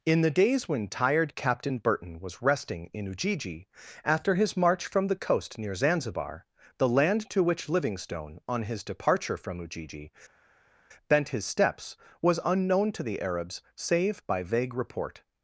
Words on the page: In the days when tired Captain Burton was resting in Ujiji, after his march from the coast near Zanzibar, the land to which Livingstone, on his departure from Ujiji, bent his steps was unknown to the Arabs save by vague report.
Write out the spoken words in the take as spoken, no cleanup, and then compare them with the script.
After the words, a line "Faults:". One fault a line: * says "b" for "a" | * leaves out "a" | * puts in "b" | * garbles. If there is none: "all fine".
In the days when tired Captain Burton was resting in Ujiji, after his march from the coast near Zanzibar, the land to which Livingstone, on his departure from Ujiji, bent his steps was unknown to the Arabs save by vague report.
Faults:
all fine